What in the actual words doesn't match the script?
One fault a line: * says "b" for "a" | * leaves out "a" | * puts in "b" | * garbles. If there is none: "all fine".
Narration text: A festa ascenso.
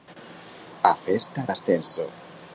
all fine